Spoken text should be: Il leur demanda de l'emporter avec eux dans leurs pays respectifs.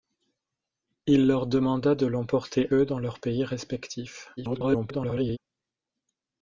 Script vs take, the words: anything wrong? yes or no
yes